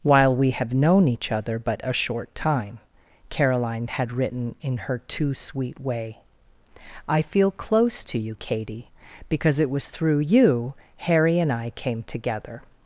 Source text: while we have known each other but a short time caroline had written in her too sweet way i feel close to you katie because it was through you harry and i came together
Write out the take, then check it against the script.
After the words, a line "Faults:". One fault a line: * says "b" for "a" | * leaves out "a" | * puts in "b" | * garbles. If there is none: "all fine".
while we have known each other but a short time caroline had written in her too sweet way i feel close to you katie because it was through you harry and i came together
Faults:
all fine